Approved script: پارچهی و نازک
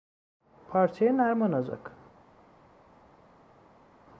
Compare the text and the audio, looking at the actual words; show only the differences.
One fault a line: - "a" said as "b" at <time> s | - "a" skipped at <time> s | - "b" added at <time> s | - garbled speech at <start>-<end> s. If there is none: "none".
- "نرم" added at 1.1 s